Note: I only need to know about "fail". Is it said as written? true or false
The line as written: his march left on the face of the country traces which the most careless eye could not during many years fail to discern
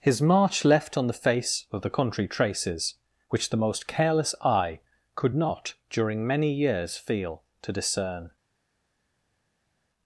false